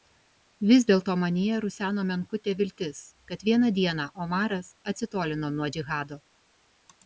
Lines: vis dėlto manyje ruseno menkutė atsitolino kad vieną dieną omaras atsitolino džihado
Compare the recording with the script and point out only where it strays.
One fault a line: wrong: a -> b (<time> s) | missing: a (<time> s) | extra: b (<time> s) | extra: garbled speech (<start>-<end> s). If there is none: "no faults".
wrong: atsitolino -> viltis (2.6 s)
extra: nuo (5.6 s)